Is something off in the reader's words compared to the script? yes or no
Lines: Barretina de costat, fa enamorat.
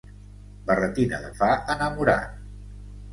yes